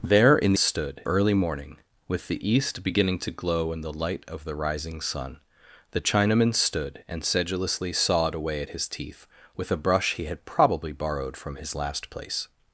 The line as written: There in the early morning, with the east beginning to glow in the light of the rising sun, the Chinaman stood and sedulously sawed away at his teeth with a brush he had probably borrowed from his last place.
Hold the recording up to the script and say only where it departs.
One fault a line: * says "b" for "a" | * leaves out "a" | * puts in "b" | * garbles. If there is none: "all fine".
* says "stood" for "the"